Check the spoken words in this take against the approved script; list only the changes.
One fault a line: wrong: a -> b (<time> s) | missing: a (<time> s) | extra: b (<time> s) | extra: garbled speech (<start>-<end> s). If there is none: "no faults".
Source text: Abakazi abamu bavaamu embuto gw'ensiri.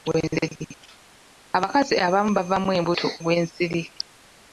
no faults